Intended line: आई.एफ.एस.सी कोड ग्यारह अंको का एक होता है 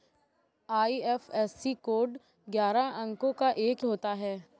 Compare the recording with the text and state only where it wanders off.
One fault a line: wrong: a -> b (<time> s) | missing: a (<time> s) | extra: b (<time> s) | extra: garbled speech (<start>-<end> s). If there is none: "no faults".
no faults